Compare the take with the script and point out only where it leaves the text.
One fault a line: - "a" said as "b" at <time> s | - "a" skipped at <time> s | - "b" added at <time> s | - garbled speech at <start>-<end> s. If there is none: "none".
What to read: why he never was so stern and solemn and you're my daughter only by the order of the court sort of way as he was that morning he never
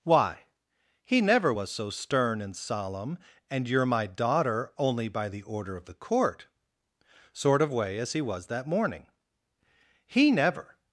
none